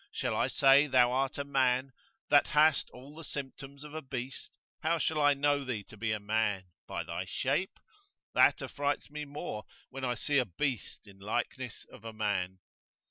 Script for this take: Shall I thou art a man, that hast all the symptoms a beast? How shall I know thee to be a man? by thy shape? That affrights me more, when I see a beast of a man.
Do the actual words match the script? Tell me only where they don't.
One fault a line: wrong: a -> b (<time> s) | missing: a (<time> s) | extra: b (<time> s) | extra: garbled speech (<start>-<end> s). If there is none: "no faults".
extra: say (0.5 s)
extra: of (3.8 s)
extra: in likeness (11.1 s)